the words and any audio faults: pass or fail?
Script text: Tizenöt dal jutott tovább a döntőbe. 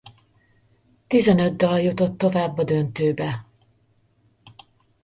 pass